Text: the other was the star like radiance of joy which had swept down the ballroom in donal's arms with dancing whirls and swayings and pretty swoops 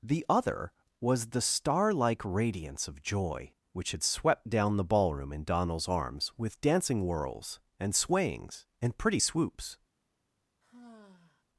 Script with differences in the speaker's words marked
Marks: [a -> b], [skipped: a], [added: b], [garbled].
the other was the star like radiance of joy which had swept down the ballroom in donal's arms with dancing whirls and swayings and pretty swoops